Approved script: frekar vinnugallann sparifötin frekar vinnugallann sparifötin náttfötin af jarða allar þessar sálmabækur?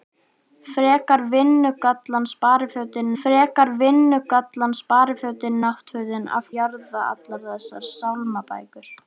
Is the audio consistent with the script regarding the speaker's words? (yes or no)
yes